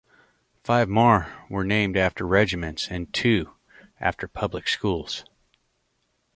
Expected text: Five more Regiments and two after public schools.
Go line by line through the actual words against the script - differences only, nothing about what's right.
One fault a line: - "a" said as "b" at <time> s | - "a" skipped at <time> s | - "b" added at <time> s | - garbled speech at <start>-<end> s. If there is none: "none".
- "were named after" added at 1.5 s